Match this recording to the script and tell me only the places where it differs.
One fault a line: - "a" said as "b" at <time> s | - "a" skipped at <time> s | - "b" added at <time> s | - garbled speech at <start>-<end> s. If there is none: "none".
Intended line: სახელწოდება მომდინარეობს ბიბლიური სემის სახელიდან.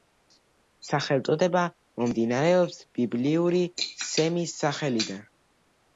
none